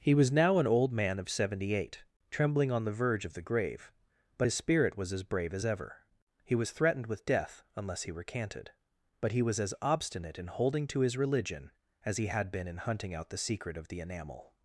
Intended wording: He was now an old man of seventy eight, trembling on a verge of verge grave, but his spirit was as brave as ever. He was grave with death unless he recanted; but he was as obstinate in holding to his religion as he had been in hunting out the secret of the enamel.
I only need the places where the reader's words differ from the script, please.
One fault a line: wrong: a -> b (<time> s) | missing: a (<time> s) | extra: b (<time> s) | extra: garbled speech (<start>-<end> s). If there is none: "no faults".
wrong: a -> the (2.9 s)
wrong: verge -> the (3.4 s)
wrong: grave -> threatened (6.7 s)